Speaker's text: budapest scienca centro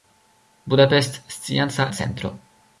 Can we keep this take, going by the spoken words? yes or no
yes